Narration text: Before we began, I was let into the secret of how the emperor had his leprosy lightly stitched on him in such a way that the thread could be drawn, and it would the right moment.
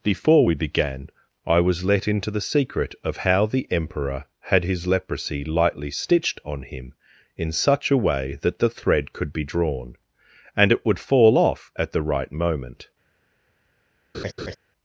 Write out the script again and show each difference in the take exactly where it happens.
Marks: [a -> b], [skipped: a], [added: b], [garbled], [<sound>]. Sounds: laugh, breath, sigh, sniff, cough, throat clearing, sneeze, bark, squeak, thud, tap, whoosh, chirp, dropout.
Before we began, I was let into the secret of how the emperor had his leprosy lightly stitched on him in such a way that the thread could be drawn, and it would [added: fall off at] the right moment. [laugh]